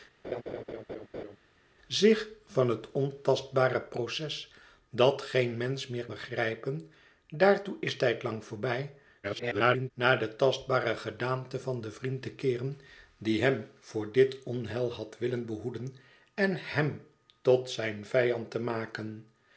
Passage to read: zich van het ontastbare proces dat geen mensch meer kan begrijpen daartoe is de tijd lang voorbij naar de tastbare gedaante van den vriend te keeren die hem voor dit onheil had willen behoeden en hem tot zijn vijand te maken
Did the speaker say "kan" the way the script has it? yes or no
no